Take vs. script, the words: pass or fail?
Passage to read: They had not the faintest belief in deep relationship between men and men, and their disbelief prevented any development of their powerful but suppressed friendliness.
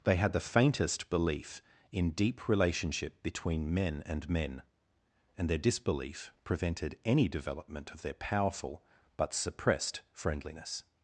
fail